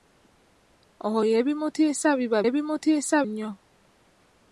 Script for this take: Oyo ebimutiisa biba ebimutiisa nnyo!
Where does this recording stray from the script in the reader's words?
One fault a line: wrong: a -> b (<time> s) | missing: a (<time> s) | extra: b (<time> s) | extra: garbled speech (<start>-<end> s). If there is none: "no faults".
no faults